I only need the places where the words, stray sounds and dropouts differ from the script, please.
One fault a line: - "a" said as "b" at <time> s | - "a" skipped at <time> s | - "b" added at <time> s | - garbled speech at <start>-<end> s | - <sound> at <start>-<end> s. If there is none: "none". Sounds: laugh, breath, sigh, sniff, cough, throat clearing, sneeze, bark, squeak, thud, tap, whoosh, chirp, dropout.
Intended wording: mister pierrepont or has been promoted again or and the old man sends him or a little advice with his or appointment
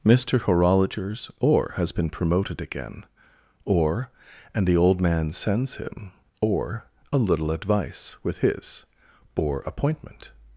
- "pierrepont" said as "horologers" at 0.4 s